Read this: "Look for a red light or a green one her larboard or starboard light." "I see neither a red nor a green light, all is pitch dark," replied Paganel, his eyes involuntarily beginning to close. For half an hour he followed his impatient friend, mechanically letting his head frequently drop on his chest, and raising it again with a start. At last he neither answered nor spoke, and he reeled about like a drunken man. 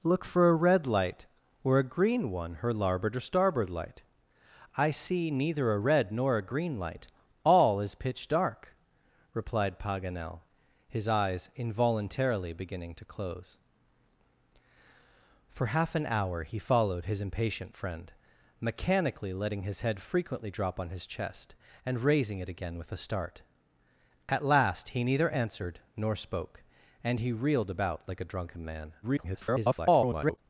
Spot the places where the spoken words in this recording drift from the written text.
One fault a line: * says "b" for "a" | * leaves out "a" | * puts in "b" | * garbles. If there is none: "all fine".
* garbles